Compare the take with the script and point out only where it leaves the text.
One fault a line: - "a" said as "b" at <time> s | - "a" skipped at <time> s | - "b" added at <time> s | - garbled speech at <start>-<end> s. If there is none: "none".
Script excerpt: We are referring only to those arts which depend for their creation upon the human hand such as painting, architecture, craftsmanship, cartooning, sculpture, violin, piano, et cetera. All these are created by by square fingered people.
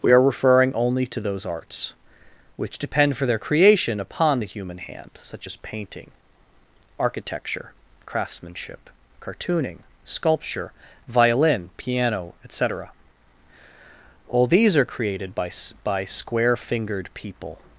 none